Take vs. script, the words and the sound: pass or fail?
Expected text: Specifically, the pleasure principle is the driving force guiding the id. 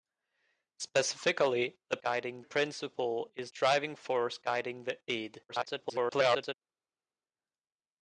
fail